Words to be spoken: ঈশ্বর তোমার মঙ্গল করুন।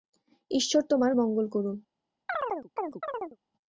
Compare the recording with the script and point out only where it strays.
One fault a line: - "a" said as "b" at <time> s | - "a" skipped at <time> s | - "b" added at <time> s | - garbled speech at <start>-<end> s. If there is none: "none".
none